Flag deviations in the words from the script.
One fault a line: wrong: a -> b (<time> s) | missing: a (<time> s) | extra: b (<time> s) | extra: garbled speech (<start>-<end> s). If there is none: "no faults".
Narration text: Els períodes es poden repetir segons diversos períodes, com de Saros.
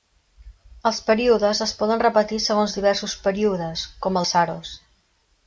no faults